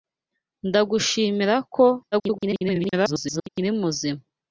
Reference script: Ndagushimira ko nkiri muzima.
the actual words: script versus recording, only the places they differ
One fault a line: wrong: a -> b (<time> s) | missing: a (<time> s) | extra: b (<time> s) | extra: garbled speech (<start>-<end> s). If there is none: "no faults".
extra: garbled speech (2.1-3.5 s)